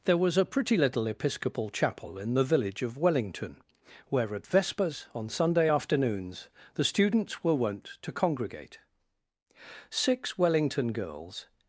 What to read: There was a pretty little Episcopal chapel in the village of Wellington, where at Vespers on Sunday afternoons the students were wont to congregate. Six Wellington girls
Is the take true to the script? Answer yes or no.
yes